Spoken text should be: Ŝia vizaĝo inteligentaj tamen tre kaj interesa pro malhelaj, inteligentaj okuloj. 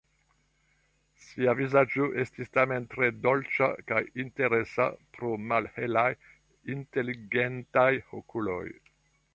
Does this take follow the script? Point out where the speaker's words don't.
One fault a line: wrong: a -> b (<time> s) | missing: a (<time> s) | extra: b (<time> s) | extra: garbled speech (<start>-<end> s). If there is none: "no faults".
wrong: inteligentaj -> estis (2.2 s)
extra: dolĉa (3.3 s)